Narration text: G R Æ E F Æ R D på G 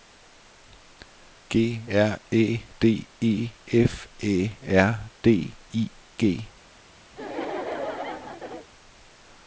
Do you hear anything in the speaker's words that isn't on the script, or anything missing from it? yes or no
yes